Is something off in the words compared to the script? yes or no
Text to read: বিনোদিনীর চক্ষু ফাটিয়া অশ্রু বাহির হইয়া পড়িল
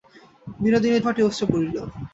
yes